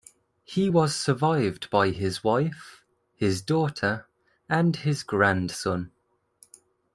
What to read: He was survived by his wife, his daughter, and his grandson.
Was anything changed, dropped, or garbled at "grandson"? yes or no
no